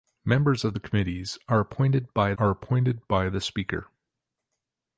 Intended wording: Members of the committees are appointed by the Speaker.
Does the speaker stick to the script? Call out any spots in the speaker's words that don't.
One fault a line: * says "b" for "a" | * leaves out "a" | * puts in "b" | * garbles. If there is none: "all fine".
* puts in "are appointed by"